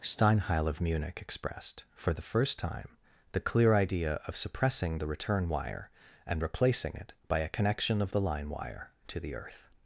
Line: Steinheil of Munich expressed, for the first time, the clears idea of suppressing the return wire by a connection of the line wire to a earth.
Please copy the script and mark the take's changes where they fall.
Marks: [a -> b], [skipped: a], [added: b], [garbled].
Steinheil of Munich expressed, for the first time, the [clears -> clear] idea of suppressing the return wire [added: and replacing it] by a connection of the line wire to [a -> the] earth.